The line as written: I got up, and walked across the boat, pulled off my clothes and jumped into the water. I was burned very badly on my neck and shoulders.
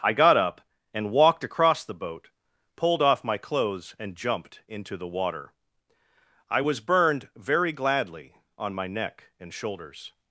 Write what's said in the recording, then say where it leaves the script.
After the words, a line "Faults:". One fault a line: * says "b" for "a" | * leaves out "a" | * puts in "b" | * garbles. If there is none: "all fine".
I got up, and walked across the boat, pulled off my clothes and jumped into the water. I was burned very gladly on my neck and shoulders.
Faults:
* says "gladly" for "badly"